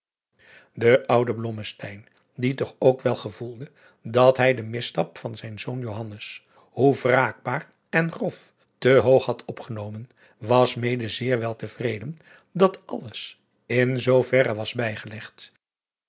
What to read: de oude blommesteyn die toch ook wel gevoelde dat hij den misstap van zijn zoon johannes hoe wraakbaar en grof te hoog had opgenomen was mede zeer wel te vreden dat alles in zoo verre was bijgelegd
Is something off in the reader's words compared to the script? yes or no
no